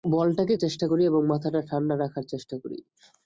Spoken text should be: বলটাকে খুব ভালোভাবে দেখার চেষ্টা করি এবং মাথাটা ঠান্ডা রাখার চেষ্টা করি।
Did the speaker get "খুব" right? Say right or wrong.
wrong